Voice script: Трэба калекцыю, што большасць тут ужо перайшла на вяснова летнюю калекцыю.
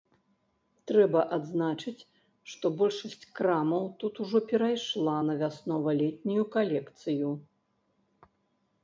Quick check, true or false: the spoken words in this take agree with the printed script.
false